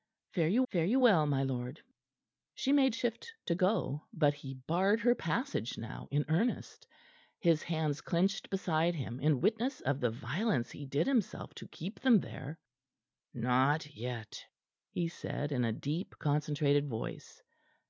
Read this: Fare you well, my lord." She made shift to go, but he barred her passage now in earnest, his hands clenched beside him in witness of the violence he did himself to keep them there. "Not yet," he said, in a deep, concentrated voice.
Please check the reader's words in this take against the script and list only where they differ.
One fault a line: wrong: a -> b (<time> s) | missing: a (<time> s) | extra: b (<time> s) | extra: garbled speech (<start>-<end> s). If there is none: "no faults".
extra: fare you (0.7 s)